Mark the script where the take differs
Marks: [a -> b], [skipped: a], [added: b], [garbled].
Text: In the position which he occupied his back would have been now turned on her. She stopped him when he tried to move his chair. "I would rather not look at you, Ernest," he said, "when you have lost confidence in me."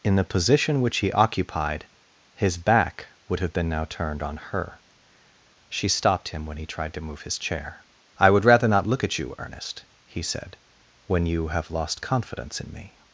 In the position which he occupied his back would have been now turned on her. She stopped him when he tried to move his chair. "I would rather not look at you, Ernest," he said, "when you have lost confidence in me."